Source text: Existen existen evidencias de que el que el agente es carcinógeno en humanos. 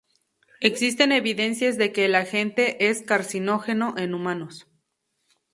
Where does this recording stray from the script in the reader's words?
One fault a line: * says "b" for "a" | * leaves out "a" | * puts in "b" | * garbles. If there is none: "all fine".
* leaves out "existen"
* leaves out "que el"